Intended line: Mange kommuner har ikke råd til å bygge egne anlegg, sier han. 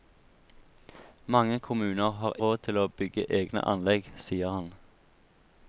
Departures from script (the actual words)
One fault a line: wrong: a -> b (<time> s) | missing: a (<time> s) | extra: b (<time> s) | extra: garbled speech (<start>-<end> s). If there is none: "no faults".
missing: ikke (2.3 s)